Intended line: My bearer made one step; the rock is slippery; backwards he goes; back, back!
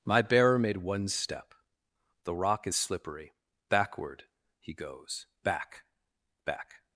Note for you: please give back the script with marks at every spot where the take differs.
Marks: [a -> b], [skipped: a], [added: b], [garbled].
My bearer made one step; the rock is slippery; [backwards -> backward] he goes; back, back!